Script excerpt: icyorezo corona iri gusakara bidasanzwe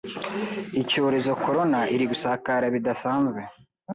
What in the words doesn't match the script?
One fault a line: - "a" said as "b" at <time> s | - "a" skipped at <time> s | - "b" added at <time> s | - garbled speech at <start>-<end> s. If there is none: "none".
none